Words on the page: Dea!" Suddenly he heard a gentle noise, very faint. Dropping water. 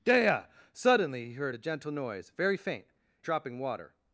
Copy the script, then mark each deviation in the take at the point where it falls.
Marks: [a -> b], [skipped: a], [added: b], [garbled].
Dea!" Suddenly he heard a gentle noise, very faint. Dropping water.